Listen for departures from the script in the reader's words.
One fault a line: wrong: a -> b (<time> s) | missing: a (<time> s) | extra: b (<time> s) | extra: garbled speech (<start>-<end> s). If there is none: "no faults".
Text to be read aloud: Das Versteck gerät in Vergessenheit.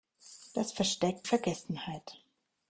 missing: gerät in (1.2 s)